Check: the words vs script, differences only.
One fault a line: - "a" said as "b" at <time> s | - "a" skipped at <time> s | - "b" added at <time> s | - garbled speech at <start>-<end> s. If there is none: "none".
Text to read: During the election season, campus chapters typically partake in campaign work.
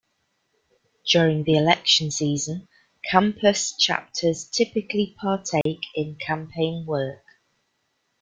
none